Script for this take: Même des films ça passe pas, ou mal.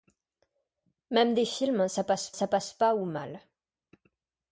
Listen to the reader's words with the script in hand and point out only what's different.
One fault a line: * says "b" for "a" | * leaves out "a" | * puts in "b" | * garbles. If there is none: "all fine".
* puts in "ça passe"